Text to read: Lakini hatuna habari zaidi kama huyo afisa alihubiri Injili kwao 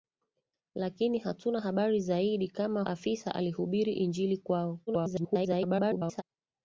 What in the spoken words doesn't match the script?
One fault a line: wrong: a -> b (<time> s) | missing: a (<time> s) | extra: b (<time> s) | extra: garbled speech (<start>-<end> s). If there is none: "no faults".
missing: huyo (2.8 s)
extra: garbled speech (4.9-6.2 s)